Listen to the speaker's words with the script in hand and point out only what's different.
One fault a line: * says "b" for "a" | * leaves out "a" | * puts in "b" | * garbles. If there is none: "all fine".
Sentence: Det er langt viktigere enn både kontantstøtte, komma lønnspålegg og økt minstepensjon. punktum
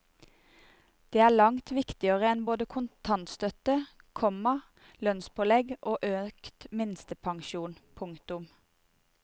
all fine